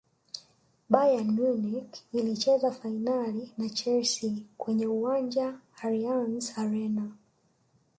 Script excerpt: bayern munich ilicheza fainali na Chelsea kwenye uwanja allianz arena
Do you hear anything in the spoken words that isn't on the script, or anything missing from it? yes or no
no